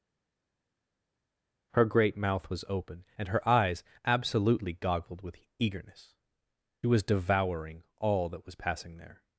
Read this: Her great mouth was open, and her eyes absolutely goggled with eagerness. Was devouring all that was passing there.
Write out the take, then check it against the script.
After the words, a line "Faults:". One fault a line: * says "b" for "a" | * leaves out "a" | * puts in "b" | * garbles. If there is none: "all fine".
Her great mouth was open, and her eyes absolutely goggled with eagerness. Was devouring all that was passing there.
Faults:
all fine